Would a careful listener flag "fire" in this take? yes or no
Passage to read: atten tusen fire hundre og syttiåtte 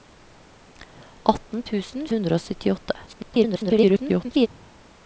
yes